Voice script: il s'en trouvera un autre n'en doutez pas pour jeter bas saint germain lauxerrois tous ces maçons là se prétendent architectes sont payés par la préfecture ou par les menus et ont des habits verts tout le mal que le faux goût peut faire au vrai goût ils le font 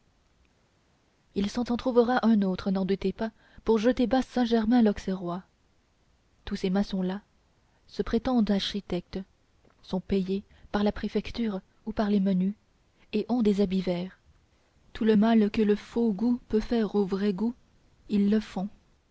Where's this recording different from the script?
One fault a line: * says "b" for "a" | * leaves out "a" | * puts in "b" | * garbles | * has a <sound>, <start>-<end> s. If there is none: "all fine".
* puts in "s'en"